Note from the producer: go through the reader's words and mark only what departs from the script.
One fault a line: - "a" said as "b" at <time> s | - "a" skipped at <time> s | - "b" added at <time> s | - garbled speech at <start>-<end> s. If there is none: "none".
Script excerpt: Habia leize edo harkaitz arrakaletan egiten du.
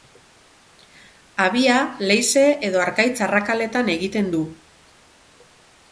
none